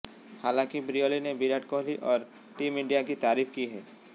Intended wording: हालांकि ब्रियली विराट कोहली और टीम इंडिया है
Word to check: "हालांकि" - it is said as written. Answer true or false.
true